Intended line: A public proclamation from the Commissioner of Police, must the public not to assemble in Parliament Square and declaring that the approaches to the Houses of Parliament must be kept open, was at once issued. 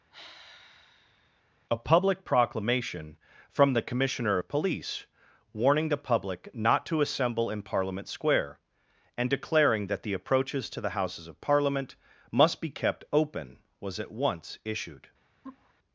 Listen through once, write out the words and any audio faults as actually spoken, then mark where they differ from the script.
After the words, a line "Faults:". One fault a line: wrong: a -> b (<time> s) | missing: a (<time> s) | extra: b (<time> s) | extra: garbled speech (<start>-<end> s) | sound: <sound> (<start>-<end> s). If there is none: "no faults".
A public proclamation from the Commissioner of Police, warning the public not to assemble in Parliament Square and declaring that the approaches to the Houses of Parliament must be kept open, was at once issued.
Faults:
sound: sigh (0.1-1.4 s)
wrong: must -> warning (5.5 s)
sound: laugh (15.4-15.7 s)